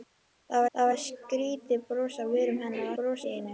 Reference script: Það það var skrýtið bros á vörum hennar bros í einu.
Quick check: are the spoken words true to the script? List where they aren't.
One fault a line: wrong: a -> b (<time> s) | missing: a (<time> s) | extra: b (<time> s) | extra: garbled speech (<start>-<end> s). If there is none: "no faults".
no faults